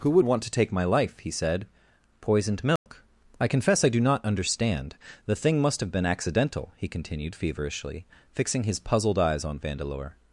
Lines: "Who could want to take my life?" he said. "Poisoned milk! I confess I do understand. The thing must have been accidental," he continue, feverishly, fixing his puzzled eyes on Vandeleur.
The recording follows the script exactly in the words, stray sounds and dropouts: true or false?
false